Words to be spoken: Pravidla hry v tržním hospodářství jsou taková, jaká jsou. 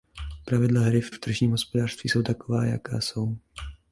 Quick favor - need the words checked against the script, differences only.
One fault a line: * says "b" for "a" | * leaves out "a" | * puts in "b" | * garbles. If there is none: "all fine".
* puts in "v"